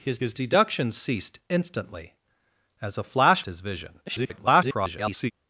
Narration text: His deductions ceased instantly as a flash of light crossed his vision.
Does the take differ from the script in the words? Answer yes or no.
yes